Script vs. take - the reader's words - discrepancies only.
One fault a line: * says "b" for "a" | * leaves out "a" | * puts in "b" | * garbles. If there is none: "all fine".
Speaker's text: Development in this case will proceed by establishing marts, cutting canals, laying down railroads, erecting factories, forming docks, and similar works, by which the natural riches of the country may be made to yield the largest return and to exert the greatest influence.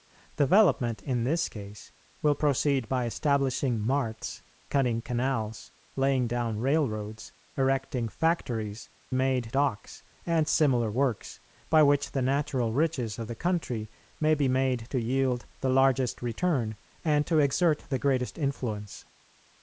* says "made" for "forming"